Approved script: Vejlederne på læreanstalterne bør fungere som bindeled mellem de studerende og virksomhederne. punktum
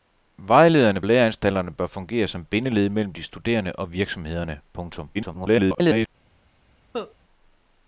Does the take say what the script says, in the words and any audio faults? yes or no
no